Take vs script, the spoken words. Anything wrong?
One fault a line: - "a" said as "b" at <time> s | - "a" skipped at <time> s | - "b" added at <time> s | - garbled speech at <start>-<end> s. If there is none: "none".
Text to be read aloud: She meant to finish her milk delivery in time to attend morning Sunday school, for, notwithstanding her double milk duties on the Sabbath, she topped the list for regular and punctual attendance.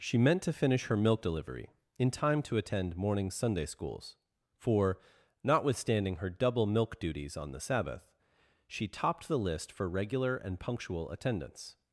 - "school" said as "schools" at 3.6 s